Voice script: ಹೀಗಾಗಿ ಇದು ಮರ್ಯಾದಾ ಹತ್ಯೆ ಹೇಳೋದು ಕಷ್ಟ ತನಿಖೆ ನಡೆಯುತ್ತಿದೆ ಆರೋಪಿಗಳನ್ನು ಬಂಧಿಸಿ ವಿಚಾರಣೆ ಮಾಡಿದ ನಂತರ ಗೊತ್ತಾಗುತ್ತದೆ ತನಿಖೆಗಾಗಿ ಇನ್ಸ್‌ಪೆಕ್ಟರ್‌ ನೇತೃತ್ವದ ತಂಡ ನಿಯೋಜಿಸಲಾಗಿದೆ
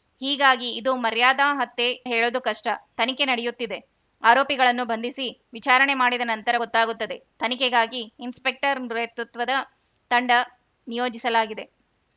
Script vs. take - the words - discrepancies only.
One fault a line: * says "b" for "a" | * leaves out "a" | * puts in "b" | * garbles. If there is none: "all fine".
all fine